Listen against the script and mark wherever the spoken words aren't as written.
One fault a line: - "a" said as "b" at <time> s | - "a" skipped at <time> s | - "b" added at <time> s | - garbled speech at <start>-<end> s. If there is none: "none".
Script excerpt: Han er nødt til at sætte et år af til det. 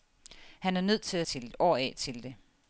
- "sætte" said as "til" at 1.2 s